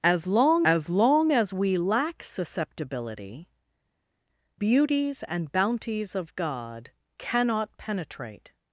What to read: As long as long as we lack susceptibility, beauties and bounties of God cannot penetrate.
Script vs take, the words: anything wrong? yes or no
no